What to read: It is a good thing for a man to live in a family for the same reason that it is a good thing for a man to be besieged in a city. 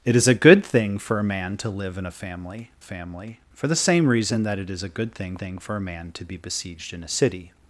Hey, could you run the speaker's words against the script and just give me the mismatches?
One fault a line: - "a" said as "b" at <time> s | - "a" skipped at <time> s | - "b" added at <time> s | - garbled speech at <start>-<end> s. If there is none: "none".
- "family" added at 2.8 s
- "thing" added at 5.4 s